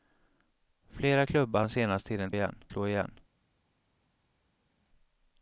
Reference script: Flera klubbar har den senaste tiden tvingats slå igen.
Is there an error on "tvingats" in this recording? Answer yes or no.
yes